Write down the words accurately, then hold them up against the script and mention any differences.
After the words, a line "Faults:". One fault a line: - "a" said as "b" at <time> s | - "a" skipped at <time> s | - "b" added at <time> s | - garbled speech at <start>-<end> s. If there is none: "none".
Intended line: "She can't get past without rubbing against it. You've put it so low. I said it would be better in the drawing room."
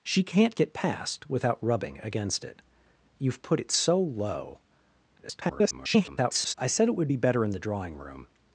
"She can't get past without rubbing against it. You've put it so low. [garbled] I said it would be better in the drawing room."
Faults:
- garbled speech at 5.2-6.5 s